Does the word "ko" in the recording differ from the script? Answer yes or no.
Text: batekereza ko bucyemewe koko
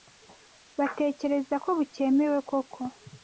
no